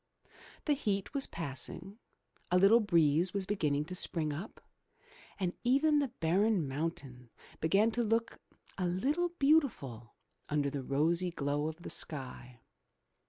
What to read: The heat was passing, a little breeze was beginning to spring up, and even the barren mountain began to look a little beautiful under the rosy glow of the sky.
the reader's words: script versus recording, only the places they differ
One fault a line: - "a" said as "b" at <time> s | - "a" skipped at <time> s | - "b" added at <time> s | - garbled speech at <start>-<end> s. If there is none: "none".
none